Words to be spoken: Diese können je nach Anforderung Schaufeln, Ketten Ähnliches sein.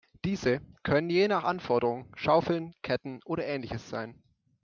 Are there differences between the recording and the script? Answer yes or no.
yes